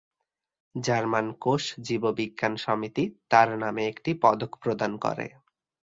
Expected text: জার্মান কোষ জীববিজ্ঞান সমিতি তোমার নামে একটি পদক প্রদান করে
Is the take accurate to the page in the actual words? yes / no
no